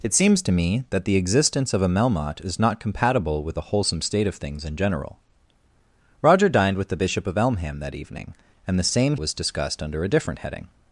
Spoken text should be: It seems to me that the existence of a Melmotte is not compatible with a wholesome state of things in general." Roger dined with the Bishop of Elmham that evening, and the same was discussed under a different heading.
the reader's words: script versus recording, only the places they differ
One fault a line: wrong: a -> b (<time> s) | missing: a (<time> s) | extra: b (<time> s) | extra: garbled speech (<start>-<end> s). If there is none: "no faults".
no faults